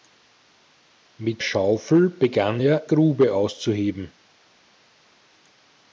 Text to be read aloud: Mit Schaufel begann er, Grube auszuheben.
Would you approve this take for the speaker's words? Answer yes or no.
yes